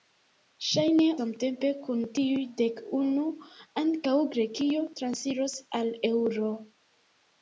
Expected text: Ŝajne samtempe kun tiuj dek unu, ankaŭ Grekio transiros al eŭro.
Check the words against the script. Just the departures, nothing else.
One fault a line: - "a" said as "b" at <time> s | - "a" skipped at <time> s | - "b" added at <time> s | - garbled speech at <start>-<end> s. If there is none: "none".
none